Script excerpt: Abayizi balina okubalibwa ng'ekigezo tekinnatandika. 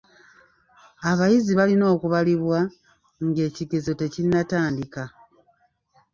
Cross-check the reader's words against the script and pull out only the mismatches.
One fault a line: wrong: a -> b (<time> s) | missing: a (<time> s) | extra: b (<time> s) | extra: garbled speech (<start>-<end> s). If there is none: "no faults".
no faults